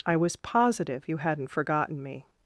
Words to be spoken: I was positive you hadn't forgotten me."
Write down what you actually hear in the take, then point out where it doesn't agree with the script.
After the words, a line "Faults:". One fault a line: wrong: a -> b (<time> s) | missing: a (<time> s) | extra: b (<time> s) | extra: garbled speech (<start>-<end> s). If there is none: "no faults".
I was positive you hadn't forgotten me."
Faults:
no faults